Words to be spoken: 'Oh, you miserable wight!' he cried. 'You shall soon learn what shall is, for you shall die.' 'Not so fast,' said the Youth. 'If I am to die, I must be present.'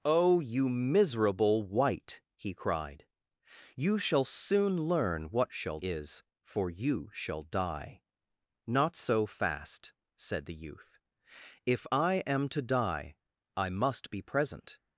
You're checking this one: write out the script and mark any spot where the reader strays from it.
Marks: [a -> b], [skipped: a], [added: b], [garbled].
'Oh, you miserable wight!' he cried. 'You shall soon learn what shall is, for you shall die.' 'Not so fast,' said the Youth. 'If I am to die, I must be present.'